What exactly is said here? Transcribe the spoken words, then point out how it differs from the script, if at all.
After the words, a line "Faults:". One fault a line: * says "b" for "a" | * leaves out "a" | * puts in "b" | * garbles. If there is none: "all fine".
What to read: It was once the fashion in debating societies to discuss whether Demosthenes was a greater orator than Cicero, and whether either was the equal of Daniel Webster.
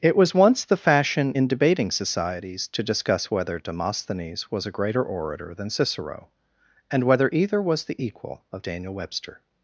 It was once the fashion in debating societies to discuss whether Demosthenes was a greater orator than Cicero, and whether either was the equal of Daniel Webster.
Faults:
all fine